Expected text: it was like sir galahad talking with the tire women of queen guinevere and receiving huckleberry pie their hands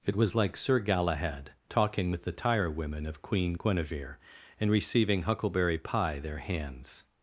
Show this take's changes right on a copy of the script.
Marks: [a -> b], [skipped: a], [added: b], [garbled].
it was like sir galahad talking with the tire women of queen guinevere and receiving huckleberry pie their hands